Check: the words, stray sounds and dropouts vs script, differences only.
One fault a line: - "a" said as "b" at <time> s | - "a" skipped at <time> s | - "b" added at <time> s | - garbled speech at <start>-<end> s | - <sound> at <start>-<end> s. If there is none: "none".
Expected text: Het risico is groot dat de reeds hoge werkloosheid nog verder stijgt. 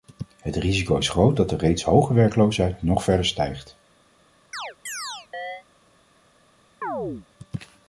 - chirp at 4.5-5.6 s
- chirp at 6.8-7.3 s